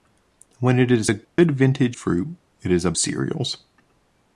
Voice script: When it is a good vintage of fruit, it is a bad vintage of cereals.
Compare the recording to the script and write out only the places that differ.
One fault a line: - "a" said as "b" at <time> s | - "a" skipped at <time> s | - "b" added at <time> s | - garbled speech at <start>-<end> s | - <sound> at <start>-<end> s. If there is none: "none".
- dropout at 1.2-1.4 s
- "of" skipped at 2.0 s
- "bad vintage of" skipped at 2.9 s